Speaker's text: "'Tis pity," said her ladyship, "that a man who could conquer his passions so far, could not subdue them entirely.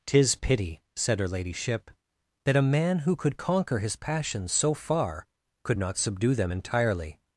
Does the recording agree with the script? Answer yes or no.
yes